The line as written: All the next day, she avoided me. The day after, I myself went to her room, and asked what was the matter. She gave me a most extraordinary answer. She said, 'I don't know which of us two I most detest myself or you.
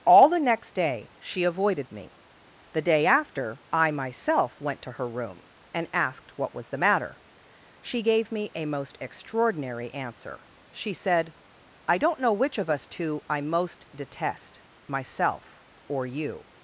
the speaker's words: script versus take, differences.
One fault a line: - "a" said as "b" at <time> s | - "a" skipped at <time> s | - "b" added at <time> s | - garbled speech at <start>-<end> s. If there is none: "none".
none